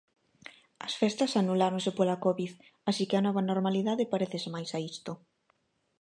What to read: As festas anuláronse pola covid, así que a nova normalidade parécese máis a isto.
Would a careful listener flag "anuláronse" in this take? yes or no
no